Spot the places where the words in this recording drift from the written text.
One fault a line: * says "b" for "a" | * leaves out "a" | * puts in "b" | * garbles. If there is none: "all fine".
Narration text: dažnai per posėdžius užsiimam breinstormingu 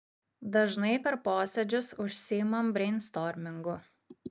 all fine